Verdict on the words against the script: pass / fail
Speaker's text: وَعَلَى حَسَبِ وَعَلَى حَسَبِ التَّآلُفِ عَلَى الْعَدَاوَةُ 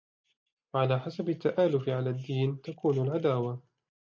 fail